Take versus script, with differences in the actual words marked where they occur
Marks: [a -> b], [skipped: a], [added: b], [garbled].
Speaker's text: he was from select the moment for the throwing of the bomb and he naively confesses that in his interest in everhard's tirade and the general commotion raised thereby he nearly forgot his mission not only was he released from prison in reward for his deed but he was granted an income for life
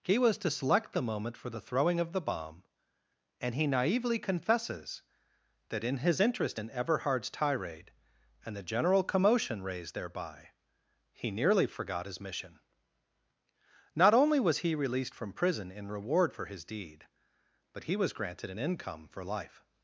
he was [from -> to] select the moment for the throwing of the bomb and he naively confesses that in his interest in everhard's tirade and the general commotion raised thereby he nearly forgot his mission not only was he released from prison in reward for his deed but he was granted an income for life